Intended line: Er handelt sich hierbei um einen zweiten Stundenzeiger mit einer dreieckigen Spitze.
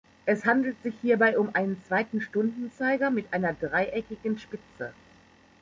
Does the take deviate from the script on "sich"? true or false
false